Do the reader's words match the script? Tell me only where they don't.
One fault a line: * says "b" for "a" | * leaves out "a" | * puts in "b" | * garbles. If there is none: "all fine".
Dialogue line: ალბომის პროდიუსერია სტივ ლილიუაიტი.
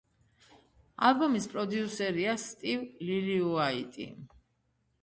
all fine